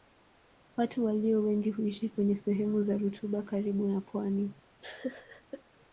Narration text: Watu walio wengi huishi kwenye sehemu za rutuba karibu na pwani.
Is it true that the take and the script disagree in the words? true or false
false